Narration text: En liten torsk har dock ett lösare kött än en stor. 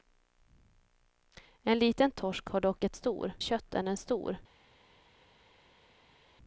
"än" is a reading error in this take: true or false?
false